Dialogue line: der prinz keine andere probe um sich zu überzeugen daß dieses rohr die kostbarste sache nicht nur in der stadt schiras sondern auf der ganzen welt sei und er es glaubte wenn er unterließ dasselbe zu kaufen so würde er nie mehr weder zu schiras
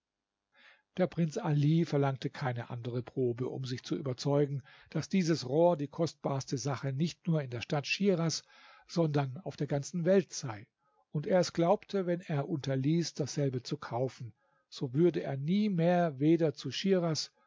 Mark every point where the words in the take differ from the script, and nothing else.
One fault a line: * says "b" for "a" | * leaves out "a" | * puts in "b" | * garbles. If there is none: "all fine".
* puts in "ali verlangte"